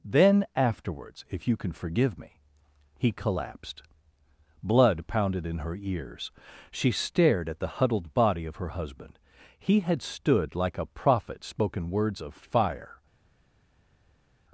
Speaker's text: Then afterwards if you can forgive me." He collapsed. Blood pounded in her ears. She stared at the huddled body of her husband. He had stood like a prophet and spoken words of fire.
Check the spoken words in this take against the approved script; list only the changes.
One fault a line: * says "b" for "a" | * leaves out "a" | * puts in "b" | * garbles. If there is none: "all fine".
* leaves out "and"